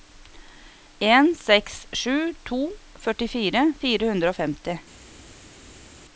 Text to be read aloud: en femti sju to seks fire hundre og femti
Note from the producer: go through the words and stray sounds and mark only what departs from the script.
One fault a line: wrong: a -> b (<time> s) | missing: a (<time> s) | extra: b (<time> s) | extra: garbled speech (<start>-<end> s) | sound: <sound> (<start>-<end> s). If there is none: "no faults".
wrong: femti -> seks (1.4 s)
wrong: seks -> førtifire (3.0 s)